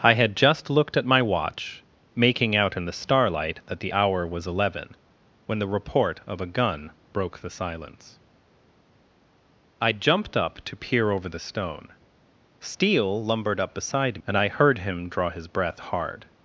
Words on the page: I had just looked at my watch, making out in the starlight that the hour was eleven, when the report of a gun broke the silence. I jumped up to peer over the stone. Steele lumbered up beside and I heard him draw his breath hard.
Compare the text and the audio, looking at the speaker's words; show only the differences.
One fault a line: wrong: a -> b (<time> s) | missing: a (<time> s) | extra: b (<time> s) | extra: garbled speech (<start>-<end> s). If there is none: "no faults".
no faults